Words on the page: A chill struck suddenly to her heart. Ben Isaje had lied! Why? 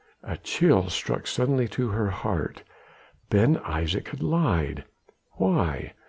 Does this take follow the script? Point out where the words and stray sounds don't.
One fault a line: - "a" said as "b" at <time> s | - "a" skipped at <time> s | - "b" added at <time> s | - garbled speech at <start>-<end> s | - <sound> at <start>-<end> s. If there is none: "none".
none